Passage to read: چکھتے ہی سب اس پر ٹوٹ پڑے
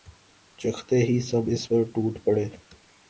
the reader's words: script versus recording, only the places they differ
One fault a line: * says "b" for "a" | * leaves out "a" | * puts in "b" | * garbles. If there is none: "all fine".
all fine